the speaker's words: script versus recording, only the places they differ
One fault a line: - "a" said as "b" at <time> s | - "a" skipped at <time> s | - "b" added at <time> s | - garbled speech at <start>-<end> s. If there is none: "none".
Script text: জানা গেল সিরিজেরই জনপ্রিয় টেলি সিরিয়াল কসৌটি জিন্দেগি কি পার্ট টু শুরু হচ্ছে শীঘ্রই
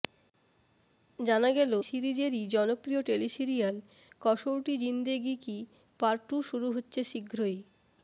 none